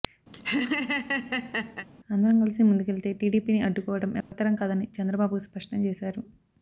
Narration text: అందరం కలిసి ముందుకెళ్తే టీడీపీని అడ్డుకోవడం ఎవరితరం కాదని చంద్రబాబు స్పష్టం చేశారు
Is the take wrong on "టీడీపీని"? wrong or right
right